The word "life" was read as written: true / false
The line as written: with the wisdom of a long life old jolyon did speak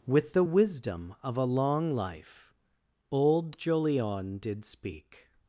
true